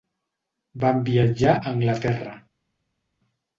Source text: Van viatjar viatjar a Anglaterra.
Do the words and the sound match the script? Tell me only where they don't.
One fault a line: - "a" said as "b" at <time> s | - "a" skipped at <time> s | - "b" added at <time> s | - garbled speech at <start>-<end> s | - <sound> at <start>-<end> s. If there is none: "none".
- "viatjar" skipped at 1.6 s